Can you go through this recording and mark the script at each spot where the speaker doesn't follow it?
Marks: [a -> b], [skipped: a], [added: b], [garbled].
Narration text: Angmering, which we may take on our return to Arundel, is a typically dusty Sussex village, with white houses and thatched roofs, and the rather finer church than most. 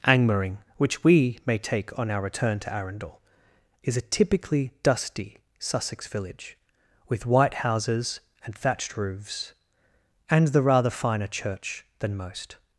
Angmering, which we may take on our return to Arundel, is a typically dusty Sussex village, with white houses and thatched roofs, and the rather finer church than most.